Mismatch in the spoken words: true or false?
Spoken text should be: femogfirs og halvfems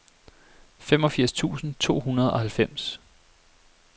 true